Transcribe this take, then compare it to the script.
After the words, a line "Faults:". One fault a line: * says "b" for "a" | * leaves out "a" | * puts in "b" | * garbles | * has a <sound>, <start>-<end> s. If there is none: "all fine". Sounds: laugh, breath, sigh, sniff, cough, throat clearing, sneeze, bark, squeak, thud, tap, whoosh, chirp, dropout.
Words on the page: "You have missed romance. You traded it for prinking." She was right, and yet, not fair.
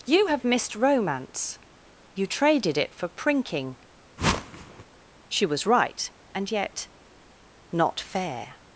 "You have missed romance. You traded it for prinking." She was right, and yet, not fair.
Faults:
* has a whoosh, 4.2-4.8 s